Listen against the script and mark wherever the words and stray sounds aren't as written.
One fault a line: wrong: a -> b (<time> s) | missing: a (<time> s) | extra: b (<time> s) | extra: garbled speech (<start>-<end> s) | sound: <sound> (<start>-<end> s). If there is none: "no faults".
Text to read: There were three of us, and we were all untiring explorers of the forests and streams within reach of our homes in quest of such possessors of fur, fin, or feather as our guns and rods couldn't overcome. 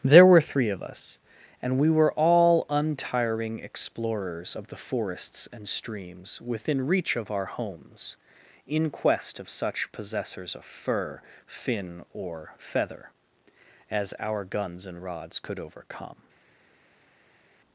wrong: couldn't -> could (15.4 s)